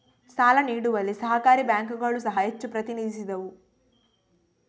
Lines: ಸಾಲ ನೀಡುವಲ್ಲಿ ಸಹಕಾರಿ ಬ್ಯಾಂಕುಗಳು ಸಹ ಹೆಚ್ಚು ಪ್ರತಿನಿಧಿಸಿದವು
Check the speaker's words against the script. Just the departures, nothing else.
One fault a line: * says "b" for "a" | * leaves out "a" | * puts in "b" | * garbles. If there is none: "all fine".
all fine